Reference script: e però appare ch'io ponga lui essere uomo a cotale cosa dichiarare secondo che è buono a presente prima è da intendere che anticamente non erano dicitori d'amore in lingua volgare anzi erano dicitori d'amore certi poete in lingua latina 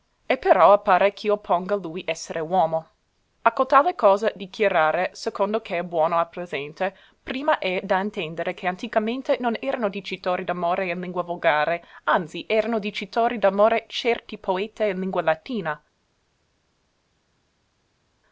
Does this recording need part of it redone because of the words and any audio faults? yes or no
no